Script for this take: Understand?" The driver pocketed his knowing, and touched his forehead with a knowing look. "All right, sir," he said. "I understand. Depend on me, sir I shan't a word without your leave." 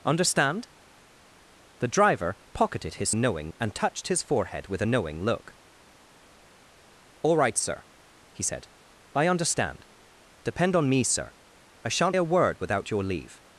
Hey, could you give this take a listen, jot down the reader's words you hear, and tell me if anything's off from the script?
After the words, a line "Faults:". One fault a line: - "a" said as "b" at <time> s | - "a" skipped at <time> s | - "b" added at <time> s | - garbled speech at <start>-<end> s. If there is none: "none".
Understand?" The driver pocketed his knowing, and touched his forehead with a knowing look. "All right, sir," he said. "I understand. Depend on me, sir I shan't a word without your leave."
Faults:
none